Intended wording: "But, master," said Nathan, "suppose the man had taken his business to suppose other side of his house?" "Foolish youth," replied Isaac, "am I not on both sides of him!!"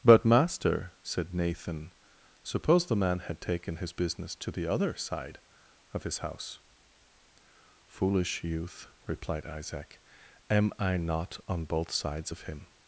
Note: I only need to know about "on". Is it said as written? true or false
true